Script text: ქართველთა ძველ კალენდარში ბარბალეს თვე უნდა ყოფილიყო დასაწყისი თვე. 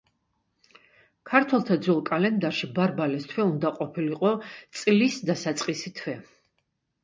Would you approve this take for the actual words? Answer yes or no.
no